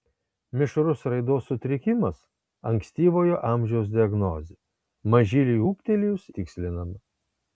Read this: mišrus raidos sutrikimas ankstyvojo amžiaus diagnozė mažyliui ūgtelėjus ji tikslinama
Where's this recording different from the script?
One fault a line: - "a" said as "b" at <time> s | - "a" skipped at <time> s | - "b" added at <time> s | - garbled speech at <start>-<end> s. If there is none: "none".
- "ji" skipped at 6.3 s